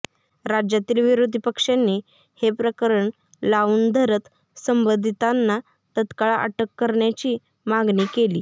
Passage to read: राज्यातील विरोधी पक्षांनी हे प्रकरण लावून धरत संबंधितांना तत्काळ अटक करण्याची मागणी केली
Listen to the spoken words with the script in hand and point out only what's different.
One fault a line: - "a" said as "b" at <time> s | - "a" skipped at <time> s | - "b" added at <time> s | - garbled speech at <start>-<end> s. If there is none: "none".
none